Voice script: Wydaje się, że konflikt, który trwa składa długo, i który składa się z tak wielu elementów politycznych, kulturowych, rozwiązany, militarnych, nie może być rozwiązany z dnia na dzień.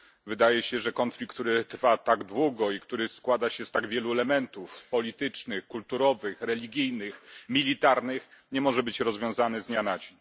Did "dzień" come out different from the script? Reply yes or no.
no